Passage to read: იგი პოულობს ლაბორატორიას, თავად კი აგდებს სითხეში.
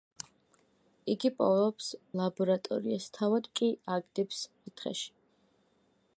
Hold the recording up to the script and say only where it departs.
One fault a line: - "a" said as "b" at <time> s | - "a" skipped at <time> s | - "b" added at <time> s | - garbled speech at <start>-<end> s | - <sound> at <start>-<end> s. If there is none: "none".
none